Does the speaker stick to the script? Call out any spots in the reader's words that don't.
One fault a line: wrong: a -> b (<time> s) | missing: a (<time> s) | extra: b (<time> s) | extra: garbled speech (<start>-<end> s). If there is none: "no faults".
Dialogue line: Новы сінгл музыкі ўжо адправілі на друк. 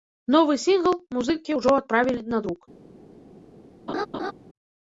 no faults